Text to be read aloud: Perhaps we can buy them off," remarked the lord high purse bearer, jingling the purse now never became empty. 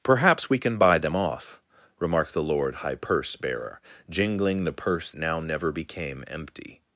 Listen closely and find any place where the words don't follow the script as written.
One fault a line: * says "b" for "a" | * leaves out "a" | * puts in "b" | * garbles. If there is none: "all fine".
all fine